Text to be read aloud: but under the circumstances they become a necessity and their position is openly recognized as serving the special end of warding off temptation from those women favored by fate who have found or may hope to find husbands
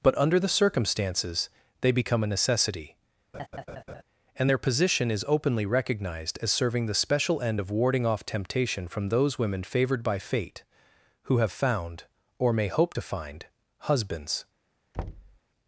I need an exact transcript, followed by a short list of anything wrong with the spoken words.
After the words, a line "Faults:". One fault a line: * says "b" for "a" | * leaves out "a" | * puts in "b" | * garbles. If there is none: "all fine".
but under the circumstances they become a necessity and their position is openly recognized as serving the special end of warding off temptation from those women favored by fate who have found or may hope to find husbands
Faults:
all fine